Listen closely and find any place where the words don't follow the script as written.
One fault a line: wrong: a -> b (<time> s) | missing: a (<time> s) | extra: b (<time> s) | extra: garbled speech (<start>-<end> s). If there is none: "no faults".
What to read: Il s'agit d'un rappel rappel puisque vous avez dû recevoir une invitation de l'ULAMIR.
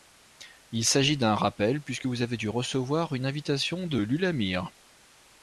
missing: rappel (1.8 s)